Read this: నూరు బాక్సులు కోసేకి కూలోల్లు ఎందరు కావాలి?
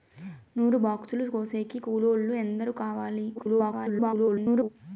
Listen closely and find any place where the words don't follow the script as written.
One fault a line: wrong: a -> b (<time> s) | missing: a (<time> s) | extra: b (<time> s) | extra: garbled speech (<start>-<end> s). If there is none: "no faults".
extra: garbled speech (3.3-4.7 s)